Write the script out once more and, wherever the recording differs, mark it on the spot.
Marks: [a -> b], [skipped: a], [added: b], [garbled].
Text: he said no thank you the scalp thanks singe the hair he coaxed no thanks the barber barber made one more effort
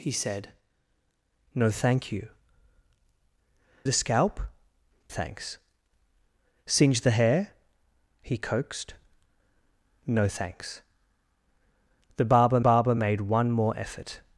he said no thank you the scalp thanks singe the hair he coaxed no thanks the barber barber made one more effort